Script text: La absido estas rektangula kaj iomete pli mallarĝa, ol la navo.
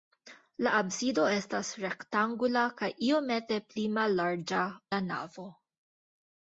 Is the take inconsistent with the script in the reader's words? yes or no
yes